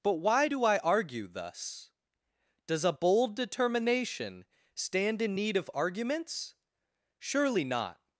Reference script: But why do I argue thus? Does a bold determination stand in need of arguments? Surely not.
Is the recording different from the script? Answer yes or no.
no